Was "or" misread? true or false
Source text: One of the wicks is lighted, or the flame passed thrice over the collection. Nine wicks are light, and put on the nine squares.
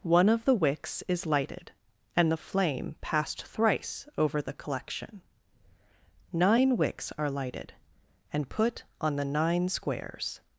true